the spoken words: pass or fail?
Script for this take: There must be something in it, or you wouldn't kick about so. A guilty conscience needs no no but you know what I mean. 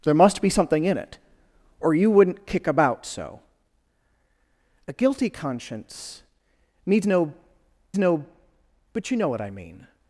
pass